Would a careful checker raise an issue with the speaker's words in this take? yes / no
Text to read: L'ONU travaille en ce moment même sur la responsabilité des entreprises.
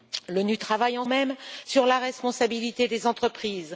yes